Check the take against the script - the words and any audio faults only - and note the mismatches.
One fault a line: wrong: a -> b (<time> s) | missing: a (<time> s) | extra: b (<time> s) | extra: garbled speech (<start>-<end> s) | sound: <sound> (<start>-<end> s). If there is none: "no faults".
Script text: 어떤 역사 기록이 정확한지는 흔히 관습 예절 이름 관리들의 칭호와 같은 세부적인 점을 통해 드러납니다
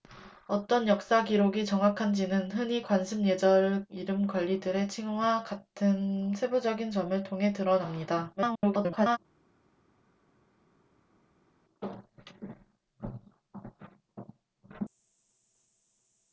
extra: garbled speech (8.4-9.2 s)